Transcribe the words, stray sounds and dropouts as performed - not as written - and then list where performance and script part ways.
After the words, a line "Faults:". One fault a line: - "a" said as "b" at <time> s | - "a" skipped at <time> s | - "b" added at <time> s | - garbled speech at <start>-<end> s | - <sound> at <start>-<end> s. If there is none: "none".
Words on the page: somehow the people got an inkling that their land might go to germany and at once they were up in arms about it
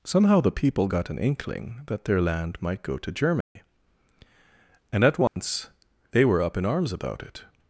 somehow the people got an inkling that their land might go to germany and at once they were up in arms about it
Faults:
- dropout at 3.4-3.6 s
- dropout at 5.3-5.4 s